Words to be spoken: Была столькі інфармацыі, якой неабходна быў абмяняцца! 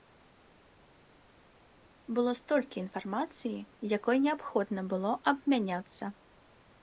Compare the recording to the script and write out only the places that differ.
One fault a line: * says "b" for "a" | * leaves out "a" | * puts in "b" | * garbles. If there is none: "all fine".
* says "Было" for "Была"
* says "было" for "быў"